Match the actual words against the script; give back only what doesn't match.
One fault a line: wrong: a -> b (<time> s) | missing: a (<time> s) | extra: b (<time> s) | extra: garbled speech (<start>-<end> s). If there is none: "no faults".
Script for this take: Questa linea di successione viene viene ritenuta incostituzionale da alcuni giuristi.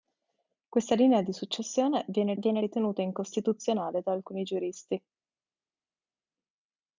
no faults